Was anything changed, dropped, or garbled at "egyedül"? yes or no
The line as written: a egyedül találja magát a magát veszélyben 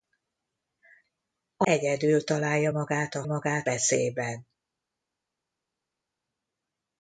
no